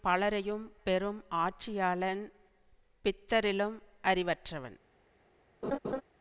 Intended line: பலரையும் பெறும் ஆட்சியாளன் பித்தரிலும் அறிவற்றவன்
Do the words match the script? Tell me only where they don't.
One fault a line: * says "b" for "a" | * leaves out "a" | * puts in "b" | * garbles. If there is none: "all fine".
all fine